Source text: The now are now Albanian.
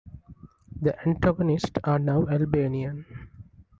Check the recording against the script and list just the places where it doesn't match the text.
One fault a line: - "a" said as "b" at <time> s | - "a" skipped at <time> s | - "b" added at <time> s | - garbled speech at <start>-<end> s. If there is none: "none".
- "now" said as "antagonists" at 1.0 s